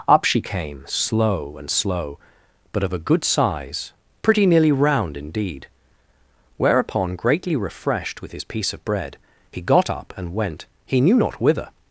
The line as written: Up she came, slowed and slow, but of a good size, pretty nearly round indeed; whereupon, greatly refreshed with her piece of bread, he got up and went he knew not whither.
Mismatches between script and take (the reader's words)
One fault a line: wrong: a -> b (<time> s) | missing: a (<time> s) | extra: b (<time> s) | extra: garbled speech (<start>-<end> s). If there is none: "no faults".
wrong: slowed -> slow (0.9 s)
wrong: her -> his (8.3 s)